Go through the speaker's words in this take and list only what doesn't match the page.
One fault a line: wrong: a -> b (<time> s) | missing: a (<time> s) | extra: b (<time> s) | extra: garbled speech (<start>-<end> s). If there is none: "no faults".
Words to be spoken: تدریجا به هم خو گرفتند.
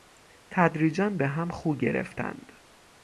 no faults